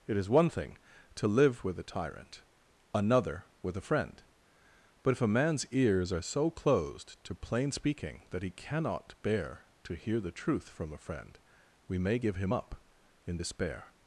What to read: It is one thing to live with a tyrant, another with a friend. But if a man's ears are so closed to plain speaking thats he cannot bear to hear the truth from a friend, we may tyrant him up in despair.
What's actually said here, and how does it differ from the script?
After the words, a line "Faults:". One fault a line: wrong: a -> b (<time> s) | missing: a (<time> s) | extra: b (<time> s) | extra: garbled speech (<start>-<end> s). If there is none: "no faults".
It is one thing to live with a tyrant, another with a friend. But if a man's ears are so closed to plain speaking that he cannot bear to hear the truth from a friend, we may give him up in despair.
Faults:
wrong: thats -> that (8.3 s)
wrong: tyrant -> give (12.2 s)